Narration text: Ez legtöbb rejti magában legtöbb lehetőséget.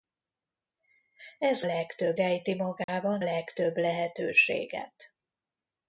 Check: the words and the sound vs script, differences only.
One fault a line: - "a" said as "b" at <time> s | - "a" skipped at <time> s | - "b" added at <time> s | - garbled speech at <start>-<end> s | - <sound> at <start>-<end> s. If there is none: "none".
- dropout at 2.8-2.9 s